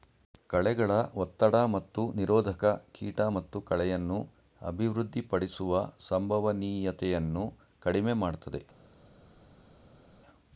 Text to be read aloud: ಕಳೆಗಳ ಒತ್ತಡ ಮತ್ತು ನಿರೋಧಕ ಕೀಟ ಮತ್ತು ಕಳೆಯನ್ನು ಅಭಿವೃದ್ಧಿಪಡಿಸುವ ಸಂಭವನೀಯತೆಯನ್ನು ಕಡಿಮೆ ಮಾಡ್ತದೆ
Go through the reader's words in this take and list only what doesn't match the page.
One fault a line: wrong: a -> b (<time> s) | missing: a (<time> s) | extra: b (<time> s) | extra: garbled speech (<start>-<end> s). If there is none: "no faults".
no faults